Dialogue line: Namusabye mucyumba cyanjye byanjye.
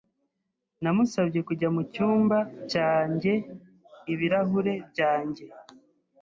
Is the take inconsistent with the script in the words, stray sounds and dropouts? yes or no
yes